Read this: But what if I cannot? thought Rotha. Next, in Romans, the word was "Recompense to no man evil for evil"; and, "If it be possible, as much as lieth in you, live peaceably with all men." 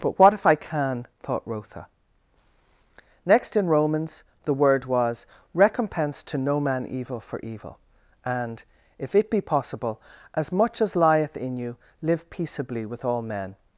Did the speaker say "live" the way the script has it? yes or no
yes